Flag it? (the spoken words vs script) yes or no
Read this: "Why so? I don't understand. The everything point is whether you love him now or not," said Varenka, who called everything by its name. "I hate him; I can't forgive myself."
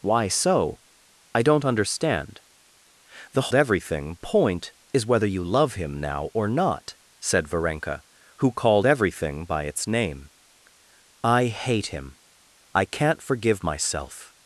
no